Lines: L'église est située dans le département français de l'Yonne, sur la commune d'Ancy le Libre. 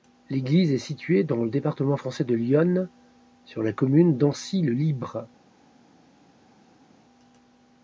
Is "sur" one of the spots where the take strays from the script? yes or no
no